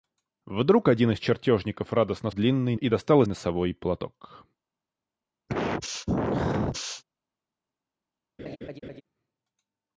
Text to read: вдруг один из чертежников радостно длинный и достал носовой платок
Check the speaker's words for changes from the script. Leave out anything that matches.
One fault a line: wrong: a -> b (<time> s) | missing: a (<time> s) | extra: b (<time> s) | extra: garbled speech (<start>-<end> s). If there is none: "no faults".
no faults